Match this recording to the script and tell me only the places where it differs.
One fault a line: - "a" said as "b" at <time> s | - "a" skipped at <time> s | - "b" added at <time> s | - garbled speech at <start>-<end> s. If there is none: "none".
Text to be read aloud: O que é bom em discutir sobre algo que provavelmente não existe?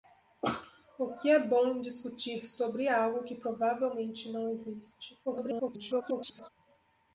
- garbled speech at 5.2-6.5 s